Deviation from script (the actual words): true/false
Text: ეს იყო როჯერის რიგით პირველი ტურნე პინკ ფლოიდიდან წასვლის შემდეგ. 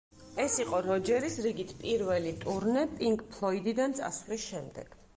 false